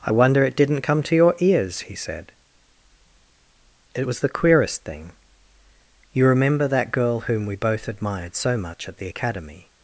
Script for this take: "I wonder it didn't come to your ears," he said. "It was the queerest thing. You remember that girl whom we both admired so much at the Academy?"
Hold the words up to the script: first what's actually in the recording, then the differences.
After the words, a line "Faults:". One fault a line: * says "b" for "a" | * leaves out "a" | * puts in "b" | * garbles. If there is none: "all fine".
"I wonder it didn't come to your ears," he said. "It was the queerest thing. You remember that girl whom we both admired so much at the Academy?"
Faults:
all fine